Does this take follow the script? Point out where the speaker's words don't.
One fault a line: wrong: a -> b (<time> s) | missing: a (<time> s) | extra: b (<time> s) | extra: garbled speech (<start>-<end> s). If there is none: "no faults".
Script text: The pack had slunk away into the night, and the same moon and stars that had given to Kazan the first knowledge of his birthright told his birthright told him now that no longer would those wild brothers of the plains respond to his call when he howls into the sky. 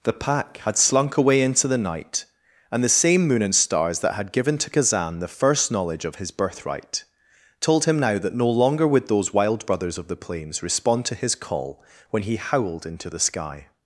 missing: his birthright told (7.8 s)
wrong: howls -> howled (12.4 s)